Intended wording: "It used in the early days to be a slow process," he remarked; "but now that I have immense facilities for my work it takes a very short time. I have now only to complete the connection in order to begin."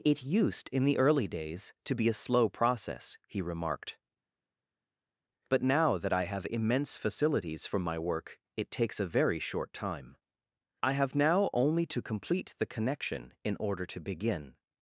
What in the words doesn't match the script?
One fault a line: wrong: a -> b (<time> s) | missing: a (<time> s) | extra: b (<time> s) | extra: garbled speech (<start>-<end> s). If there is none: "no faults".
no faults